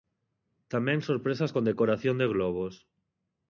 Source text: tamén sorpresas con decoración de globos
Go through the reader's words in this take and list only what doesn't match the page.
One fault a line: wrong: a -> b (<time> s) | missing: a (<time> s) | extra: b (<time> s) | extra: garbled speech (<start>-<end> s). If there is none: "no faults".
no faults